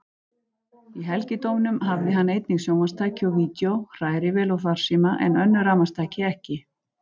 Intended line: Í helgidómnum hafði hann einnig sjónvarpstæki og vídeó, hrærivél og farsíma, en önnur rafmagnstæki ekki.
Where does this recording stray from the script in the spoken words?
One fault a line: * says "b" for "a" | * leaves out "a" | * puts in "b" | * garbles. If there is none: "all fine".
all fine